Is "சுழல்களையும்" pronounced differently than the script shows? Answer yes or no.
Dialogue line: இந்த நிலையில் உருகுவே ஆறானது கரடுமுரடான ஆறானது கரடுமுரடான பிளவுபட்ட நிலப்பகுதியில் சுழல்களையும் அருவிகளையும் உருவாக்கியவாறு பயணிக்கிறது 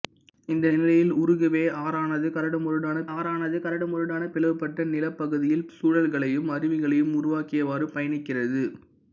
no